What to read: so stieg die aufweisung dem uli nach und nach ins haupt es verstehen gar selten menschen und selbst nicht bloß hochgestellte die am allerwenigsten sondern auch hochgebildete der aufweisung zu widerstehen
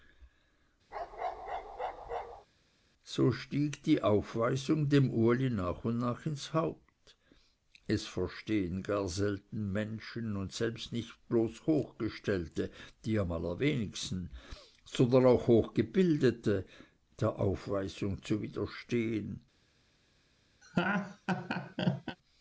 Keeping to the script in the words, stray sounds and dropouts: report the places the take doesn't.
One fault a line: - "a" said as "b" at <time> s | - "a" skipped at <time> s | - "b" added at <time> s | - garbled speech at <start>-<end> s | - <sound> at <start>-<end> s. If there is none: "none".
- bark at 0.9-2.5 s
- laugh at 20.6-22.2 s